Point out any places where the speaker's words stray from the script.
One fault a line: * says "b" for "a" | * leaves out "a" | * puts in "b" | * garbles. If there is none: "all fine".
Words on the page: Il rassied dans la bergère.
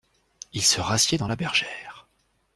* puts in "se"